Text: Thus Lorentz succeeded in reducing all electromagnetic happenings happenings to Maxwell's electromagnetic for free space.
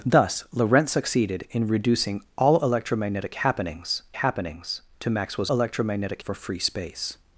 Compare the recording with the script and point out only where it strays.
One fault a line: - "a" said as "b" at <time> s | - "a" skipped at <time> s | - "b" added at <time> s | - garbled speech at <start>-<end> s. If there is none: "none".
none